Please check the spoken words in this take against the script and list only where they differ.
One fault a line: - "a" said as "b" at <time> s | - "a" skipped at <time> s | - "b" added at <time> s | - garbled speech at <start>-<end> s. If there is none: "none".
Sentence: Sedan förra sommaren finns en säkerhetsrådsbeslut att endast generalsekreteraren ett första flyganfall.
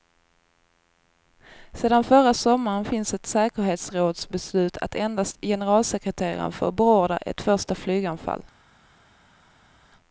- "en" said as "ett" at 3.1 s
- "får beordra" added at 6.5 s